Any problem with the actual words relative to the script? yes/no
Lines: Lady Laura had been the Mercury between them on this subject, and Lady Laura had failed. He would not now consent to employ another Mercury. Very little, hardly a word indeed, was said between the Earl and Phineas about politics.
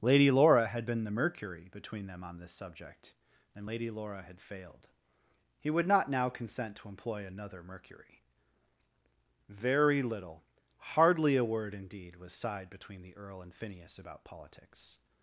yes